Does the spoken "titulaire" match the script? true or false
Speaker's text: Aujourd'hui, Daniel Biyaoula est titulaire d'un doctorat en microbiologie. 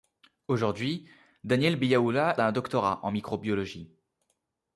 false